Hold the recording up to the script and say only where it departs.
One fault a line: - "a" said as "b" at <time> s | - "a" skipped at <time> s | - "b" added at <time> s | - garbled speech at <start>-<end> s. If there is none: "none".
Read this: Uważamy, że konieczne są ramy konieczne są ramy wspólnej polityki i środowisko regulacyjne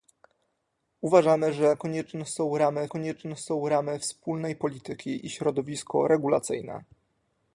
none